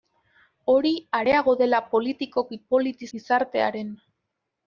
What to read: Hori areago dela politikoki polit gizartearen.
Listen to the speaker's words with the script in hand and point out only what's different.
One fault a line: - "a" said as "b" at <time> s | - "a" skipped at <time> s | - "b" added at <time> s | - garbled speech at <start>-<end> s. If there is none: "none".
none